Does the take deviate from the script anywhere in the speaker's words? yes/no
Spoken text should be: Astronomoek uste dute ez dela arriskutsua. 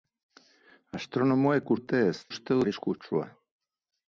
yes